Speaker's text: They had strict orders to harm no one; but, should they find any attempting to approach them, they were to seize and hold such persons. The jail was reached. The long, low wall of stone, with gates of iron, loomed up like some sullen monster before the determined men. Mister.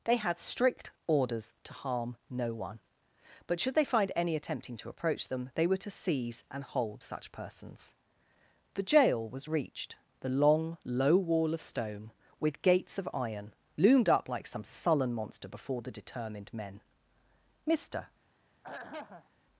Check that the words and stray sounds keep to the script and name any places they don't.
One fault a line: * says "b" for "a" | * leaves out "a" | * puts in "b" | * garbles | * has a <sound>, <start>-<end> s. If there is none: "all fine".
* has a throat clearing, 18.6-19.3 s